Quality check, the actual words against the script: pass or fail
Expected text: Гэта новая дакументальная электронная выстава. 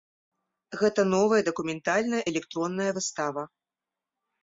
pass